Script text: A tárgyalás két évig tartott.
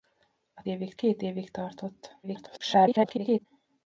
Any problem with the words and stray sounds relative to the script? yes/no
yes